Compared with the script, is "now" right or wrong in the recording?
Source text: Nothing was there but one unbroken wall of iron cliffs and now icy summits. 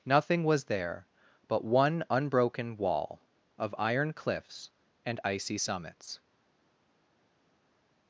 wrong